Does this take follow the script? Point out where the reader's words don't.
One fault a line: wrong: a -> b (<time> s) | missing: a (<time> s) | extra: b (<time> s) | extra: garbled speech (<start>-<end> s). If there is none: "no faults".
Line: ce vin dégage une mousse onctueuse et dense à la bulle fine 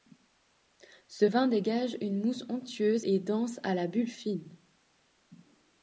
no faults